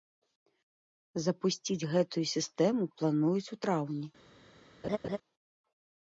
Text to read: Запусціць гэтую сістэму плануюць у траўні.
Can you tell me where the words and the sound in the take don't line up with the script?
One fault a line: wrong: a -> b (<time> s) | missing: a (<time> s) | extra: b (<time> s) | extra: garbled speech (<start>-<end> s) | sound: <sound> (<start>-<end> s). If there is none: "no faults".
sound: laugh (4.8-5.2 s)